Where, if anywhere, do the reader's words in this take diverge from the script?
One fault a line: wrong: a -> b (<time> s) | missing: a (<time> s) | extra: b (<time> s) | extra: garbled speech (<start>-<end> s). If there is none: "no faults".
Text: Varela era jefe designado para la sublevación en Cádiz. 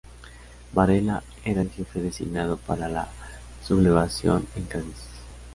extra: el (1.6 s)